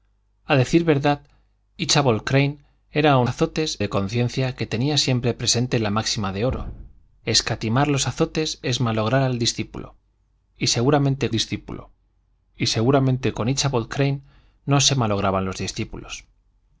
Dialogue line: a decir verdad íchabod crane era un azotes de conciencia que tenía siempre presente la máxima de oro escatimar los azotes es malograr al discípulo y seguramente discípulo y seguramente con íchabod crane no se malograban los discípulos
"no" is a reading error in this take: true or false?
false